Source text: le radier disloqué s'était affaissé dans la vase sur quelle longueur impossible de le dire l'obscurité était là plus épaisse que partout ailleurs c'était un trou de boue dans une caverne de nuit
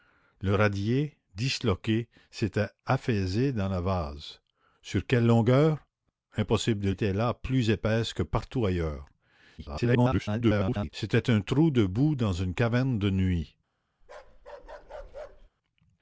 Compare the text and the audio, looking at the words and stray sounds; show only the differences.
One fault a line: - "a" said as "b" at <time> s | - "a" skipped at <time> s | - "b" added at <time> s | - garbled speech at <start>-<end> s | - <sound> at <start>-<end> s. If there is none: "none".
- "le dire l'obscurité" skipped at 6.9 s
- garbled speech at 9.6-10.9 s
- bark at 14.0-15.5 s